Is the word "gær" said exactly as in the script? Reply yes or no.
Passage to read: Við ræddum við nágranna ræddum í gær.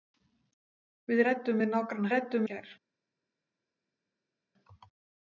yes